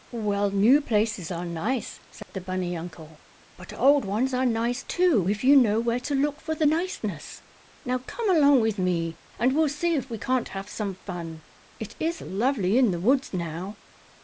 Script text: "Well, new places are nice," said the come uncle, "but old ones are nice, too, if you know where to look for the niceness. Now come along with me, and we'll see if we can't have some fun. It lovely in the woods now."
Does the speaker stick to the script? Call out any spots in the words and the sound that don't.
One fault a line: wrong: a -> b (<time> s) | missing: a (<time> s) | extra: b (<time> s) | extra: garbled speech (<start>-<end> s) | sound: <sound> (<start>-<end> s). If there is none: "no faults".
sound: dropout (2.2-2.3 s)
wrong: come -> bunny (2.4 s)
extra: is (12.0 s)